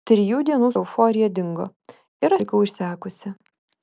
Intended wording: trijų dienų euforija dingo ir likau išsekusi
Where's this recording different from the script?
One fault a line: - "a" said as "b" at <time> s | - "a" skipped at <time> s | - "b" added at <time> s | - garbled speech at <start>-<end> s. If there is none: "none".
none